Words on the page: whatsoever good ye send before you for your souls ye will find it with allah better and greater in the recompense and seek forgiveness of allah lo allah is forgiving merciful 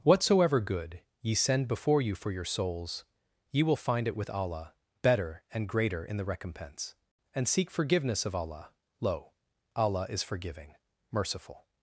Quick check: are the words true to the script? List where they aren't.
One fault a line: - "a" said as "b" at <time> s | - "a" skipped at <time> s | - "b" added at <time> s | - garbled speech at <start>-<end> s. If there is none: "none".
none